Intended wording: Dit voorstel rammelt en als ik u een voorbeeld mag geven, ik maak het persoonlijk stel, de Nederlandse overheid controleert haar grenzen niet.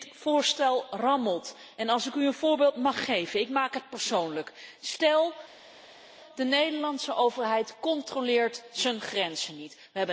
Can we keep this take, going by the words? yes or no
yes